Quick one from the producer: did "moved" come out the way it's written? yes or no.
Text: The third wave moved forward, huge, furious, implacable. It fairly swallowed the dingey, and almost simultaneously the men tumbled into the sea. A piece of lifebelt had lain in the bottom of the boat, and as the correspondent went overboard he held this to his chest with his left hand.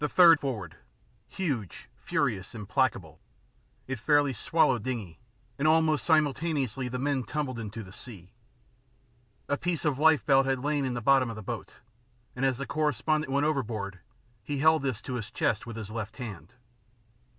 no